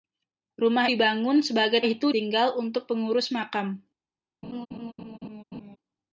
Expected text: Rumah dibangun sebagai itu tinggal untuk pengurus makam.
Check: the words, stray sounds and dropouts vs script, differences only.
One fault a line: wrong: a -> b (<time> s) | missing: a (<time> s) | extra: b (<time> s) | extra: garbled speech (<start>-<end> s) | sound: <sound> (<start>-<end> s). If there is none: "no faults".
sound: laugh (4.4-5.8 s)